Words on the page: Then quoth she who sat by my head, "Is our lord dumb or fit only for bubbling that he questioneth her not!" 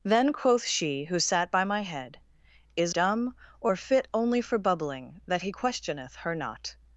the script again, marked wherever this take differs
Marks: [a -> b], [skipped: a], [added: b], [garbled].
Then quoth she who sat by my head, "Is [skipped: our lord] dumb or fit only for bubbling that he questioneth her not!"